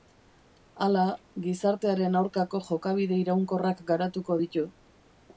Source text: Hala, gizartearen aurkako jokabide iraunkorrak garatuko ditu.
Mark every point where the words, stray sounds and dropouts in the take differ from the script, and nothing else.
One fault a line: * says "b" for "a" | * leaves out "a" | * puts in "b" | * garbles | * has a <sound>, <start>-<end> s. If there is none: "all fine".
all fine